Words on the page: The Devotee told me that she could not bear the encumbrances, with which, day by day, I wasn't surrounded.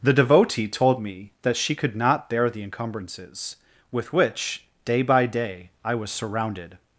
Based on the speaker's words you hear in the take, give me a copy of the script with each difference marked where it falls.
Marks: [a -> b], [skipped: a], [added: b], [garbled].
The Devotee told me that she could not bear the encumbrances, with which, day by day, I [wasn't -> was] surrounded.